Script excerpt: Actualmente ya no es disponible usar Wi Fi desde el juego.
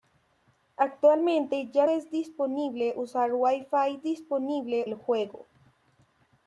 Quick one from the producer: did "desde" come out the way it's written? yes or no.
no